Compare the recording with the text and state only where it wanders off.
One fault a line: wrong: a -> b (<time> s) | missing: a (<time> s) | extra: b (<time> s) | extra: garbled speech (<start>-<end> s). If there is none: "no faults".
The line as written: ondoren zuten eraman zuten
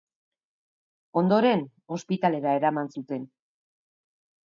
wrong: zuten -> ospitalera (2.0 s)